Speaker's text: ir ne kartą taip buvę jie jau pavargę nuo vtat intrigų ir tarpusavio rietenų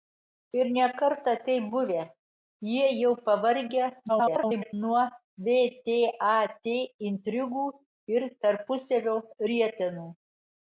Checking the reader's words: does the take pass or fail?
fail